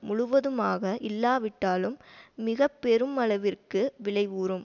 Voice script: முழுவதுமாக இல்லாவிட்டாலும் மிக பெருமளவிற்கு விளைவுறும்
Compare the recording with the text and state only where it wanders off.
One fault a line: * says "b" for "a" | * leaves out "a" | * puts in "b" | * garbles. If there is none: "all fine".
all fine